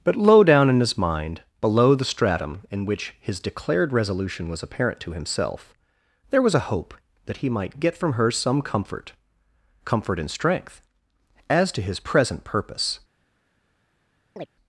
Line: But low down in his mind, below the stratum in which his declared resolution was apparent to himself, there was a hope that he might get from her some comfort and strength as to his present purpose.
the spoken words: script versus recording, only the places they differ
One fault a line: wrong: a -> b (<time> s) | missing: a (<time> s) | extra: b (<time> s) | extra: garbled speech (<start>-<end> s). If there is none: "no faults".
extra: comfort (9.8 s)